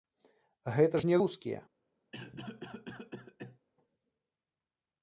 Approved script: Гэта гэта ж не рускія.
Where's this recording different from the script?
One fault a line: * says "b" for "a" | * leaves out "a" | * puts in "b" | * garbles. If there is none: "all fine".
* leaves out "гэта"